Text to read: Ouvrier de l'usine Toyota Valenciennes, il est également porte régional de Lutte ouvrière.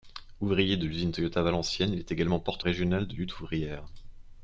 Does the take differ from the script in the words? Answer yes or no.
no